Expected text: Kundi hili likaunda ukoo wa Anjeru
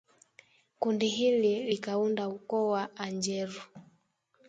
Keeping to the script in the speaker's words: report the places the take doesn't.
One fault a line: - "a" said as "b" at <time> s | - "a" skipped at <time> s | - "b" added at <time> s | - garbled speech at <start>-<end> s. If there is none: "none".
none